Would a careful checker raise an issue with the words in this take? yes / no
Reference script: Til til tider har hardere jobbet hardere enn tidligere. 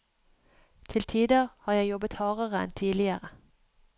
yes